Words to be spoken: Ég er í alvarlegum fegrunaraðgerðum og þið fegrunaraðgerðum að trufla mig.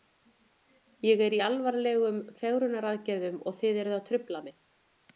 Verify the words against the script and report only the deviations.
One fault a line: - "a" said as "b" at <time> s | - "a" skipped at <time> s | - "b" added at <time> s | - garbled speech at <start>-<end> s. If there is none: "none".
- "fegrunaraðgerðum" said as "eruð" at 3.9 s